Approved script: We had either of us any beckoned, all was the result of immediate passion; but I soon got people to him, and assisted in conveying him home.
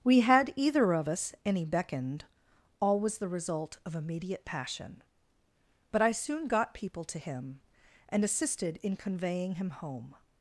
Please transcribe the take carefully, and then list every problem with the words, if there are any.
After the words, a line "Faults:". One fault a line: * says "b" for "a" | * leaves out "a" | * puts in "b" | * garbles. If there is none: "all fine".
We had either of us any beckoned, all was the result of immediate passion; but I soon got people to him, and assisted in conveying him home.
Faults:
all fine